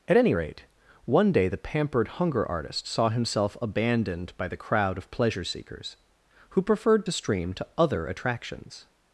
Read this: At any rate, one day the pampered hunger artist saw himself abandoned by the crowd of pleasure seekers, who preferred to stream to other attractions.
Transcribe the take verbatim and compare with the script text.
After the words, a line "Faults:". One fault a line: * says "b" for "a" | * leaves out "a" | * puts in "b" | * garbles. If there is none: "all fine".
At any rate, one day the pampered hunger artist saw himself abandoned by the crowd of pleasure seekers, who preferred to stream to other attractions.
Faults:
all fine